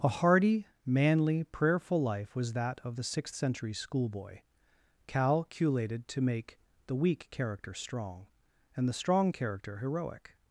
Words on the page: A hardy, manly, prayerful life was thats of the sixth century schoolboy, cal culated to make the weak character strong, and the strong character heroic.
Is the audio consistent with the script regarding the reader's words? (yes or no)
no